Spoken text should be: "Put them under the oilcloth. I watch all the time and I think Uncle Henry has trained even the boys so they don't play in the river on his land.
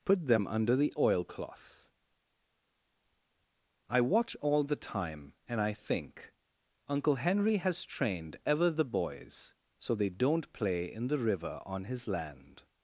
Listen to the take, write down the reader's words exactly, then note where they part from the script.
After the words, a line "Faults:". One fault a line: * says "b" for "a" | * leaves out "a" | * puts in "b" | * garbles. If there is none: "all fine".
"Put them under the oilcloth. I watch all the time and I think Uncle Henry has trained ever the boys so they don't play in the river on his land.
Faults:
* says "ever" for "even"